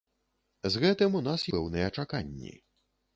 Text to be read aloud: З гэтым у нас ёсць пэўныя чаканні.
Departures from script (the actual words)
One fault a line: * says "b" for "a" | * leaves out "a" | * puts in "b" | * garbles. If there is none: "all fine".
* leaves out "ёсць"